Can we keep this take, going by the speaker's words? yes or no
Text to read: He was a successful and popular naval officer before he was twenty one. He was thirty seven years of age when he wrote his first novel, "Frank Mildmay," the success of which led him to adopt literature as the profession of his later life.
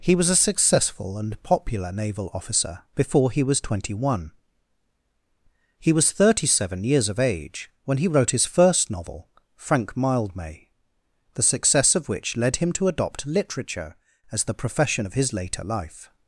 yes